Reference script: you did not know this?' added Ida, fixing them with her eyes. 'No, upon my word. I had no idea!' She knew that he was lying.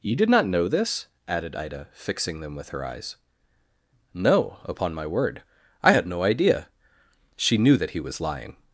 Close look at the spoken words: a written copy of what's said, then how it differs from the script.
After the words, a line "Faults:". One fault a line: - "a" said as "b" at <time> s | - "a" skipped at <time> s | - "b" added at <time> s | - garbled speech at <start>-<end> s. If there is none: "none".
you did not know this?' added Ida, fixing them with her eyes. 'No, upon my word. I had no idea!' She knew that he was lying.
Faults:
none